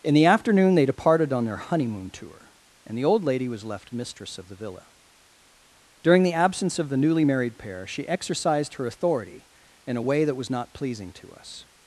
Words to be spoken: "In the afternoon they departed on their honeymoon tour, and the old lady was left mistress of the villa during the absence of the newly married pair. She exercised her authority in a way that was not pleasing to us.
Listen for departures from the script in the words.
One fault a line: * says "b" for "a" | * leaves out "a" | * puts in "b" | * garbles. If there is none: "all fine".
all fine